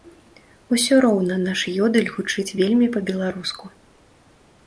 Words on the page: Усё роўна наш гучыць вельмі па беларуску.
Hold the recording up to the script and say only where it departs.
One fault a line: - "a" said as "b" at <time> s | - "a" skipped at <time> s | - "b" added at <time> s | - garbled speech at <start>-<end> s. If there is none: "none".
- "ёдэль" added at 1.9 s